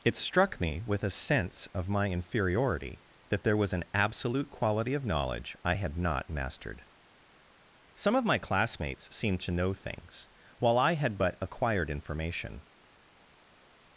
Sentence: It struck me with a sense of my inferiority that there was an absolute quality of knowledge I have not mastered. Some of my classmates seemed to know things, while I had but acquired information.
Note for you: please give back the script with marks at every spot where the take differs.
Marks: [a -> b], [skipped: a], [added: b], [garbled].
It struck me with a sense of my inferiority that there was an absolute quality of knowledge I [have -> had] not mastered. Some of my classmates seemed to know things, while I had but acquired information.